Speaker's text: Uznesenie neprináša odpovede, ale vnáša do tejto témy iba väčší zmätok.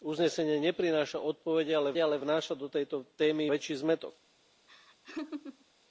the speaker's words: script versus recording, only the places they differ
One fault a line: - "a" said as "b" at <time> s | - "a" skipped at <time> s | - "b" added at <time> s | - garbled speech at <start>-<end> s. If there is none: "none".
- "ale" added at 2.0 s
- "iba" skipped at 3.5 s